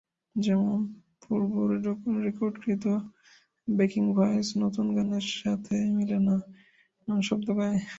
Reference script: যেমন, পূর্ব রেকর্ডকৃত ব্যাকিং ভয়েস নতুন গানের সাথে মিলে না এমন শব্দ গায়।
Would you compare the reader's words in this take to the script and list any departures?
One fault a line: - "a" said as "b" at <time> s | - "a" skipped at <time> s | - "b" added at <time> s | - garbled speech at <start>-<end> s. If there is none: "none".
none